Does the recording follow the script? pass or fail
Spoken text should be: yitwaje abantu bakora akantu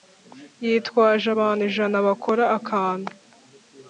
fail